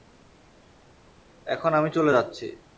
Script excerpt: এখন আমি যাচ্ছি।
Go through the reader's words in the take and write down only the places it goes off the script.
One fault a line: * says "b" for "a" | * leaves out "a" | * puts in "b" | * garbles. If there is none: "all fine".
* puts in "চলে"